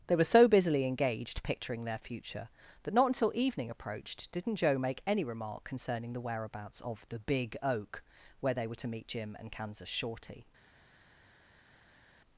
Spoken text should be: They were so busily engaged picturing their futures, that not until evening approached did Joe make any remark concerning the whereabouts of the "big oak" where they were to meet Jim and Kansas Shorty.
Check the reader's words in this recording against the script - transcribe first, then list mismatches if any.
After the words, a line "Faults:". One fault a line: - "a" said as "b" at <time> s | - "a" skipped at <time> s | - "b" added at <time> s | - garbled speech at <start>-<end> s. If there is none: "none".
They were so busily engaged picturing their future, that not until evening approached didn't Joe make any remark concerning the whereabouts of the "big oak" where they were to meet Jim and Kansas Shorty.
Faults:
- "futures" said as "future" at 2.0 s
- "did" said as "didn't" at 4.3 s